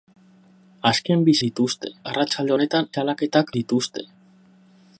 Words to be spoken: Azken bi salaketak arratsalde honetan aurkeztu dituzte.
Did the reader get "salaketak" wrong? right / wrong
wrong